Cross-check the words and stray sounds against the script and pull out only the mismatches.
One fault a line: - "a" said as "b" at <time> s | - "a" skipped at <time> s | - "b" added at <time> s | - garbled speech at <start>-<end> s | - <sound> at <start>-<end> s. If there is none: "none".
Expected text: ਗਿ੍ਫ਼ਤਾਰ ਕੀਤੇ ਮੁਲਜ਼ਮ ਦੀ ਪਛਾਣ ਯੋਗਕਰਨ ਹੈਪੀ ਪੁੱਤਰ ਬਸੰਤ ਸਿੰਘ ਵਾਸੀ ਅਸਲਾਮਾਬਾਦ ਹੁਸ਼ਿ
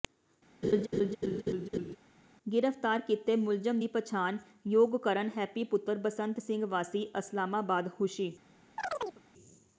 - laugh at 0.6-2.0 s
- chirp at 8.8-9.2 s